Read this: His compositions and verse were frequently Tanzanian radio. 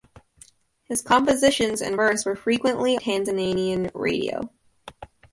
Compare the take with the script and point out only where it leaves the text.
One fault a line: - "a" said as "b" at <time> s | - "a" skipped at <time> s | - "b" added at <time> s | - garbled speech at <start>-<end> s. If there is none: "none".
none